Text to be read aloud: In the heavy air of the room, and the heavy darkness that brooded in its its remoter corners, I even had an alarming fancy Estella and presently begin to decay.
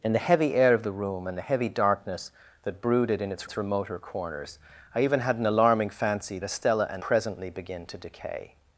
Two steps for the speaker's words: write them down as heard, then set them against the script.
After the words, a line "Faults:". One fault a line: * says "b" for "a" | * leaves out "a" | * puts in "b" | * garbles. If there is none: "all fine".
In the heavy air of the room, and the heavy darkness that brooded in its its remoter corners, I even had an alarming fancy Estella and presently begin to decay.
Faults:
all fine